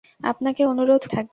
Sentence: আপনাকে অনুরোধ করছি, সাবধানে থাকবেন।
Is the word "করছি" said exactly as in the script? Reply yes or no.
no